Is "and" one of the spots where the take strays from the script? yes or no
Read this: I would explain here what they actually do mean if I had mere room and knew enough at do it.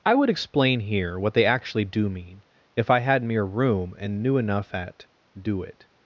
no